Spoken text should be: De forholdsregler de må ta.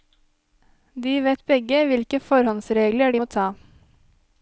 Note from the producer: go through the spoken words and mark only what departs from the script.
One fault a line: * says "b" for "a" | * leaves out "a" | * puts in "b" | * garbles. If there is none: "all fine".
* puts in "vet begge hvilke"